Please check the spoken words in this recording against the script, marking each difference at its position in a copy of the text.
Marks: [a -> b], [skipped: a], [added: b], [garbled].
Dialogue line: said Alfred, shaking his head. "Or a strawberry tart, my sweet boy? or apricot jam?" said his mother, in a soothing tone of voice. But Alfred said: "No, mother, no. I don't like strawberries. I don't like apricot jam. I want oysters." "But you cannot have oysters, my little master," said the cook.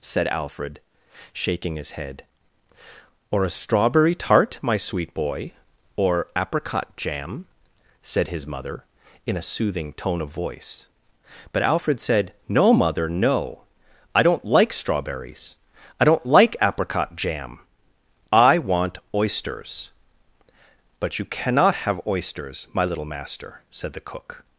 said Alfred, shaking his head. "Or a strawberry tart, my sweet boy? or apricot jam?" said his mother, in a soothing tone of voice. But Alfred said: "No, mother, no. I don't like strawberries. I don't like apricot jam. I want oysters." "But you cannot have oysters, my little master," said the cook.